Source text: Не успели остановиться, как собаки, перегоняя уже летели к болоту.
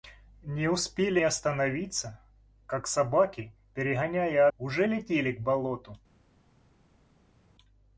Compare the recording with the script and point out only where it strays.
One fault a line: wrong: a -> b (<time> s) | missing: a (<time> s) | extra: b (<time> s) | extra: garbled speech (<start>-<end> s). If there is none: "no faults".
no faults